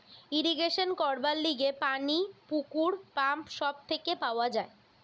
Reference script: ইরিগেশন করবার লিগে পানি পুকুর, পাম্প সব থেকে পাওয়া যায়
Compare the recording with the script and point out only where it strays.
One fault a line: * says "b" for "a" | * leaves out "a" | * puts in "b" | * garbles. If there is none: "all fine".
all fine